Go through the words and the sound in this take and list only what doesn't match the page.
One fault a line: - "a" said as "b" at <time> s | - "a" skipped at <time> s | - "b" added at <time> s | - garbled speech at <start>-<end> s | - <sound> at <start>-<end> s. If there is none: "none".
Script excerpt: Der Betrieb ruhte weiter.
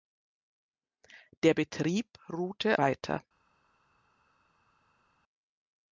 none